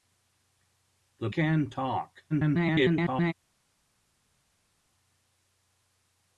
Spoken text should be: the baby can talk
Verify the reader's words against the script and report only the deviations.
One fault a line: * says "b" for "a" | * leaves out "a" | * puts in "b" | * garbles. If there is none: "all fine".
* leaves out "baby"
* garbles